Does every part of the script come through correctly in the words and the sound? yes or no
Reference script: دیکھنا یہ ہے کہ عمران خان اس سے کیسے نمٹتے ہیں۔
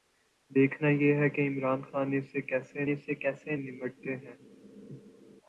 no